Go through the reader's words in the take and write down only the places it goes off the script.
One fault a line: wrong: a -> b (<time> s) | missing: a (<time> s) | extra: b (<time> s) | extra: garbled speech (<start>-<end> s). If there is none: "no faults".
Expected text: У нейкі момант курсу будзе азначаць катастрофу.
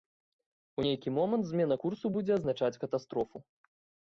extra: змена (1.5 s)